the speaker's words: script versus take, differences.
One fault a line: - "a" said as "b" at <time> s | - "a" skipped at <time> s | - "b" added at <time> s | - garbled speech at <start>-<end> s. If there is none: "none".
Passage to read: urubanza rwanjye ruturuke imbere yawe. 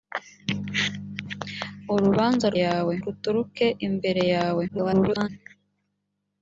- "rwanjye" said as "yawe" at 2.6 s
- garbled speech at 4.7-5.3 s